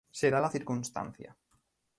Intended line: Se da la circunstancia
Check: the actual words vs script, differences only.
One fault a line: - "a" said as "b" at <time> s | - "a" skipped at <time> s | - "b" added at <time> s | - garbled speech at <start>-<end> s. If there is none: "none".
none